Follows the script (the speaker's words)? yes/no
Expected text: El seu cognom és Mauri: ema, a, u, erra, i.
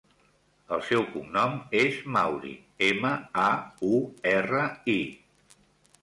yes